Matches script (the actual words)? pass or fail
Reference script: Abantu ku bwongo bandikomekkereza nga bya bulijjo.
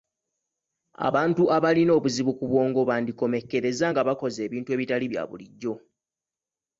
fail